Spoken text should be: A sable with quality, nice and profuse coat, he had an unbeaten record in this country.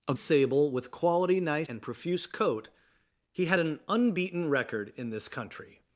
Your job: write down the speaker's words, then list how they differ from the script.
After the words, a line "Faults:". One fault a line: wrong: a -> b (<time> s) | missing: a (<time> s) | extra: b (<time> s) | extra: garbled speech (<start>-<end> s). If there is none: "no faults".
A sable with quality, nice and profuse coat, he had an unbeaten record in this country.
Faults:
no faults